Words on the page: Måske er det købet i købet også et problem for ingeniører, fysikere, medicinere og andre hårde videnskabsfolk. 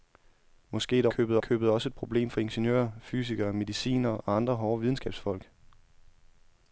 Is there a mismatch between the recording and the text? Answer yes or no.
no